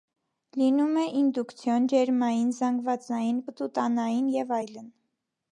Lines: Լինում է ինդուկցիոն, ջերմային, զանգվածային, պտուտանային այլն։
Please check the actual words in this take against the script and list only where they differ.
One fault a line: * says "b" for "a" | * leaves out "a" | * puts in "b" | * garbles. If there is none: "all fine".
* puts in "և"